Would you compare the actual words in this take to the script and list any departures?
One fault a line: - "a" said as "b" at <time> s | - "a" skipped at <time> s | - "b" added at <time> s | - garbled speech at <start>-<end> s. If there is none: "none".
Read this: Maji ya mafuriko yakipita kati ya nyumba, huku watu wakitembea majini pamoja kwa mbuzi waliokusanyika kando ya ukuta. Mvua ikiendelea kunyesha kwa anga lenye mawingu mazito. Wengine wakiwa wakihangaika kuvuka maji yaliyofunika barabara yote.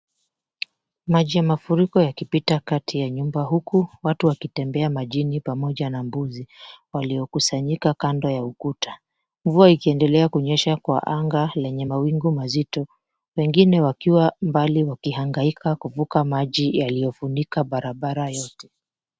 - "kwa" said as "na" at 5.9 s
- "mbali" added at 14.4 s